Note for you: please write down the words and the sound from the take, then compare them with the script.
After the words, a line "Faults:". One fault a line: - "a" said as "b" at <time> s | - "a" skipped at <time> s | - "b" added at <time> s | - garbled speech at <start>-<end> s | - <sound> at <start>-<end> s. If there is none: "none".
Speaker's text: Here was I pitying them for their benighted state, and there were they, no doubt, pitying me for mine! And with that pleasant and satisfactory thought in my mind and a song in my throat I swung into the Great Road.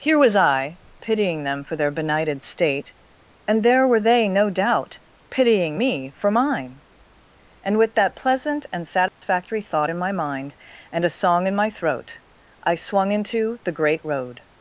Here was I pitying them for their benighted state, and there were they, no doubt, pitying me for mine! And with that pleasant and satisfactory thought in my mind and a song in my throat I swung into the Great Road.
Faults:
- dropout at 9.1-9.2 s